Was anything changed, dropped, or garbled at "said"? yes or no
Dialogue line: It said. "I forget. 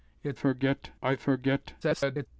yes